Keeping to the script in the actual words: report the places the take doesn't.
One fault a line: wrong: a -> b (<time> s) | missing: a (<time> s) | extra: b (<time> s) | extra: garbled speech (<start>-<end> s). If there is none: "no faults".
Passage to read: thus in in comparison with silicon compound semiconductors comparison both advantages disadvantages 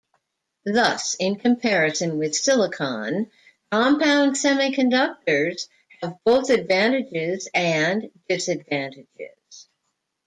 missing: in (1.4 s)
wrong: comparison -> have (6.0 s)
extra: and (7.5 s)